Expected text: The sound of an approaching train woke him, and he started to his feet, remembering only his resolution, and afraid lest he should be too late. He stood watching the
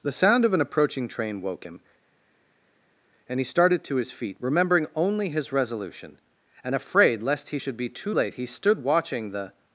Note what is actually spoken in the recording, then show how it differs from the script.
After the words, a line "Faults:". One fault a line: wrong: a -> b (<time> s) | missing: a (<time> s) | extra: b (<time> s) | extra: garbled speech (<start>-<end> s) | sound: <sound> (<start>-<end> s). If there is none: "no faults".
The sound of an approaching train woke him, and he started to his feet, remembering only his resolution, and afraid lest he should be too late. He stood watching the
Faults:
no faults